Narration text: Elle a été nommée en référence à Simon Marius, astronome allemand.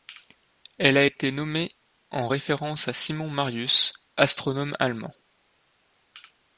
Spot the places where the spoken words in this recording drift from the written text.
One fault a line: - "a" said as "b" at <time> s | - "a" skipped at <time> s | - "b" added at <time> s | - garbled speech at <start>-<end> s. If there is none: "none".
none